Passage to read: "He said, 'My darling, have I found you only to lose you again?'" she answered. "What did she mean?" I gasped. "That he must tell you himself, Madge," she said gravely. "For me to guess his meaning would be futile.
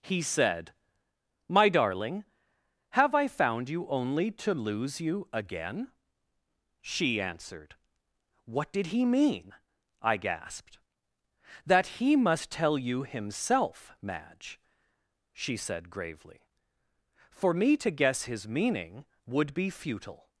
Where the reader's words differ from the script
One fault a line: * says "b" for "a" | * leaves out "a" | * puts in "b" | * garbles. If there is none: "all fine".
* says "he" for "she"